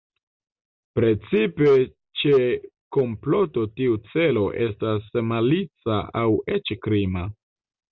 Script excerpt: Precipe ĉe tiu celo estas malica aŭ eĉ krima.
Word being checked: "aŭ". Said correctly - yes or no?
yes